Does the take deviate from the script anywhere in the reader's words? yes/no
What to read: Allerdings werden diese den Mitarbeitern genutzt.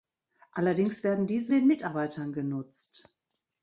no